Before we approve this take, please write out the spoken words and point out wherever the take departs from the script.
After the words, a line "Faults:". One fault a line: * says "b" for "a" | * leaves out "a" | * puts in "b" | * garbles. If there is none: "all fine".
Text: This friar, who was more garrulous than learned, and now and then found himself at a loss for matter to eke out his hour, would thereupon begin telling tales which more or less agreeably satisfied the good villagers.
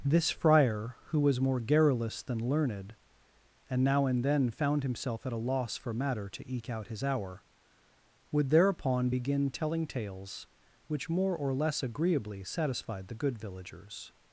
This friar, who was more garrulous than learned, and now and then found himself at a loss for matter to eke out his hour, would thereupon begin telling tales which more or less agreeably satisfied the good villagers.
Faults:
all fine